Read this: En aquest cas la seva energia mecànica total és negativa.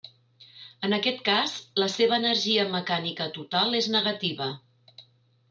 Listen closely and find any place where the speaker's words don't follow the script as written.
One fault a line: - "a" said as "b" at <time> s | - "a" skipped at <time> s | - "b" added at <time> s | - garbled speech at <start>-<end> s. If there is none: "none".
none